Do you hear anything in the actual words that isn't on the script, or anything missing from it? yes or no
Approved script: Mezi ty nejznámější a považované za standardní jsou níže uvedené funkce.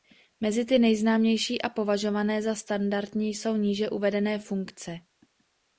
no